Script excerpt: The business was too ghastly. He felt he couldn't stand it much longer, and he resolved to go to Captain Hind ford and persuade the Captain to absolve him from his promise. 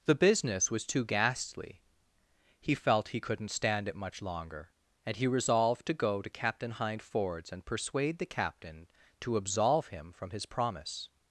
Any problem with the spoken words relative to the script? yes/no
yes